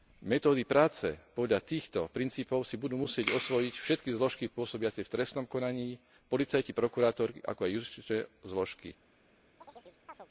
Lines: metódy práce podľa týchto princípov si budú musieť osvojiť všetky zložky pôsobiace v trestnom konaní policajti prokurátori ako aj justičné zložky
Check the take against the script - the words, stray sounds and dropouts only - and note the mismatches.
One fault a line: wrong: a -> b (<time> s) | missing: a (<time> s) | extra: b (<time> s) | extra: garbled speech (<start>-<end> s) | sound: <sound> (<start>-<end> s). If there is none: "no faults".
sound: chirp (9.6-10.3 s)